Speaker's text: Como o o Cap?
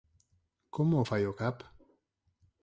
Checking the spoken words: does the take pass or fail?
fail